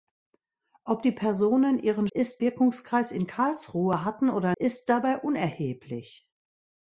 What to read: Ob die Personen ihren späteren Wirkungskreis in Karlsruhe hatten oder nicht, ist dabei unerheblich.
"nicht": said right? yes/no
no